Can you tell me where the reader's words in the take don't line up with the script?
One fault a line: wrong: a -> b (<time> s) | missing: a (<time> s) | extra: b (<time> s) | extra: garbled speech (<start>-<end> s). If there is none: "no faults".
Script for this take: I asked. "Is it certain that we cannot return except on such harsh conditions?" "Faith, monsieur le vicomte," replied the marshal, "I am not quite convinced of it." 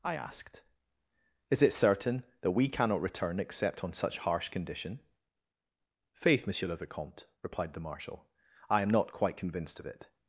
wrong: conditions -> condition (4.5 s)